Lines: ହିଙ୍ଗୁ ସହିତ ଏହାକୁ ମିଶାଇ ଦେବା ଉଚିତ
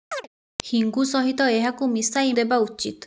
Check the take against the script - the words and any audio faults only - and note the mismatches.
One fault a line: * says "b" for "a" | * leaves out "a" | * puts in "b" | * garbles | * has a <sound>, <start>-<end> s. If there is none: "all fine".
* has a chirp, 0.1-0.3 s